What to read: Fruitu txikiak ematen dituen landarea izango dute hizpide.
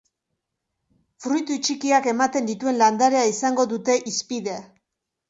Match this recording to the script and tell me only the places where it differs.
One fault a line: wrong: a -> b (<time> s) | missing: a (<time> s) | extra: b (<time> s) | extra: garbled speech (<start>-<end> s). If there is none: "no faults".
no faults